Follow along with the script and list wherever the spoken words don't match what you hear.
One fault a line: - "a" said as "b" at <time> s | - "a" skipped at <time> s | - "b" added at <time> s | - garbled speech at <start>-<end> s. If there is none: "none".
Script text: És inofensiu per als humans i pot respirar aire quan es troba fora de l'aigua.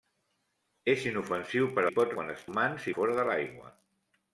- "als humans" skipped at 1.8 s
- "respirar aire" skipped at 2.2 s
- "troba" said as "humans" at 2.5 s